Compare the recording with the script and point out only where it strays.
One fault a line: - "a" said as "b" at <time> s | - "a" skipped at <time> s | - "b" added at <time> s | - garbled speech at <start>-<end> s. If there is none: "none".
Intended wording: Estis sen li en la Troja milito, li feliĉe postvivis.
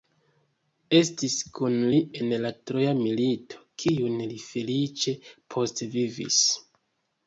- "sen" said as "kun" at 1.6 s
- "kiun" added at 3.8 s